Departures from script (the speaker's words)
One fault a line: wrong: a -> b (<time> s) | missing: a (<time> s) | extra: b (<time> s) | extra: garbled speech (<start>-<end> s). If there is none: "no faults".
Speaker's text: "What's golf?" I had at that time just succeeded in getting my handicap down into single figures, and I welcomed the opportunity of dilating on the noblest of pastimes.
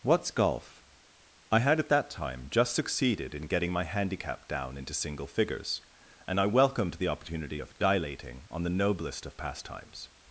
no faults